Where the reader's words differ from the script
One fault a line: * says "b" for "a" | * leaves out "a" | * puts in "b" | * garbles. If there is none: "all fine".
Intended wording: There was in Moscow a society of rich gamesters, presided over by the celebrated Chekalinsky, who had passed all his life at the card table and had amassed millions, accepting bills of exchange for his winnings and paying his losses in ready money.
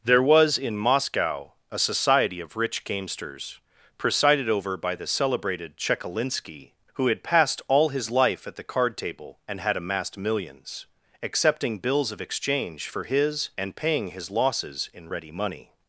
* leaves out "winnings"